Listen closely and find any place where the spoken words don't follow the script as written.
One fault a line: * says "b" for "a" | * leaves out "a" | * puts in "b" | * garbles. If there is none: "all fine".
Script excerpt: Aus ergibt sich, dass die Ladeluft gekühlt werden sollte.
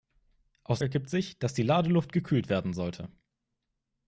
all fine